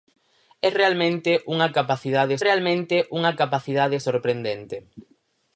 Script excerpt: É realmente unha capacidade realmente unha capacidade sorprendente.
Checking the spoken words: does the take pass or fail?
pass